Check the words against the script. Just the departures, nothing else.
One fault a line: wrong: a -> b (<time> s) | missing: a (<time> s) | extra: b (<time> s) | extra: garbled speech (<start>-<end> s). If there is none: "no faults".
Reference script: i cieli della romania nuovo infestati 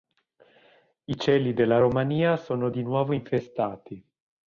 extra: sono di (2.4 s)